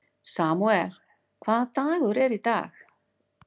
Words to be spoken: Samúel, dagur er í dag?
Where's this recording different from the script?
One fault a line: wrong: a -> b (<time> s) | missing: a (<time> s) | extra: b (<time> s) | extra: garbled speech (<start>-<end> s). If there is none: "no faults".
extra: hvaða (1.4 s)